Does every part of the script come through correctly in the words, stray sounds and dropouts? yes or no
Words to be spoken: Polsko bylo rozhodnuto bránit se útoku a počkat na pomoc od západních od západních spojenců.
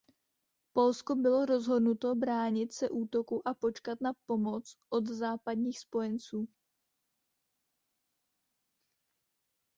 no